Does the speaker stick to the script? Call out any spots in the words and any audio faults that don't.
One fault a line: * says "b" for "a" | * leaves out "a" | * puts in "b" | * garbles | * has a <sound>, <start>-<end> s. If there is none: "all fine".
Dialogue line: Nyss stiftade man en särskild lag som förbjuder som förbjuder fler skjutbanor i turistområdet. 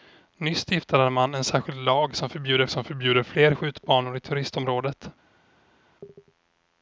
all fine